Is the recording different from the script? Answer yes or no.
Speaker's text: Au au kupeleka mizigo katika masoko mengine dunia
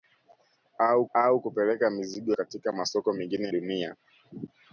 no